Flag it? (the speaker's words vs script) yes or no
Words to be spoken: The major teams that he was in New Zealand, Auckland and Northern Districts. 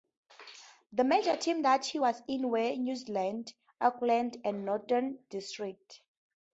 yes